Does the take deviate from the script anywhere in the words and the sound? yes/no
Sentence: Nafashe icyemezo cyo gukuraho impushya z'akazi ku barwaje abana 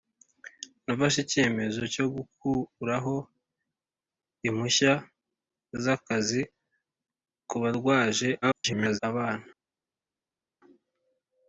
yes